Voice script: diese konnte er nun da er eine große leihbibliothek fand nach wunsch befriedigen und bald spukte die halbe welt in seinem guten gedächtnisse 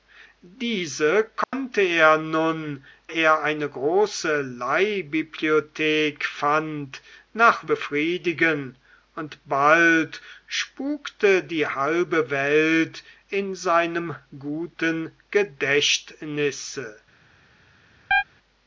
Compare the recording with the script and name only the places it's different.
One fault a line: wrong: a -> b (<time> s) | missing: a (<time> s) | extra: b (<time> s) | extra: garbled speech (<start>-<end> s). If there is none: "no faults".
missing: da (2.8 s)
missing: wunsch (7.7 s)